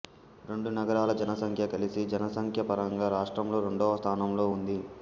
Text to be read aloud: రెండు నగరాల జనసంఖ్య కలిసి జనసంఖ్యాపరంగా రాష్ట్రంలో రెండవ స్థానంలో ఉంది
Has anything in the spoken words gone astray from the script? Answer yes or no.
no